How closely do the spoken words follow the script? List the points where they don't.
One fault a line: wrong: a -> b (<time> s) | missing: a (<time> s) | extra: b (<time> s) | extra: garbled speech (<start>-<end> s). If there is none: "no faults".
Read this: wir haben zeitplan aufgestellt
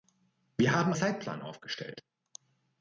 no faults